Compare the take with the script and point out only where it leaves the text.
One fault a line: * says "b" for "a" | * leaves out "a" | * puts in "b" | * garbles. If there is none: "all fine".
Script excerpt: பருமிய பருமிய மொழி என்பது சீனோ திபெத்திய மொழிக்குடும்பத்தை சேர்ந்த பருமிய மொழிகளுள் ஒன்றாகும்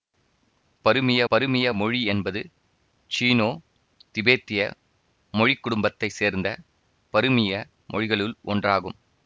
all fine